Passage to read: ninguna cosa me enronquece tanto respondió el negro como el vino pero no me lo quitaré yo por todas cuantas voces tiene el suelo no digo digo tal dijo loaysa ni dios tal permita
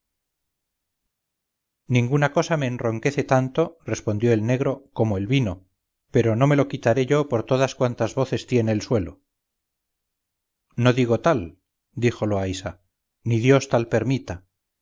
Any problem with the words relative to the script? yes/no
yes